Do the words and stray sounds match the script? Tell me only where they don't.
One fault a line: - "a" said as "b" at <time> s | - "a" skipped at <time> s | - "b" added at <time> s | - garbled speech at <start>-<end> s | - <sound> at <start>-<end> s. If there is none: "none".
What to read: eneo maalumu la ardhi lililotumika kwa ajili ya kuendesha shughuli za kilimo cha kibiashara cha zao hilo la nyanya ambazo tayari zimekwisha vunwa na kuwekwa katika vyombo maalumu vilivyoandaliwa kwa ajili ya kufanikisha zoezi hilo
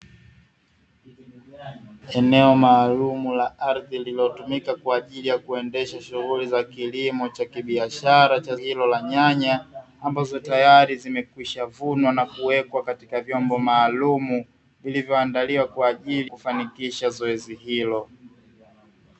- "zao" skipped at 8.6 s
- "ya" skipped at 16.3 s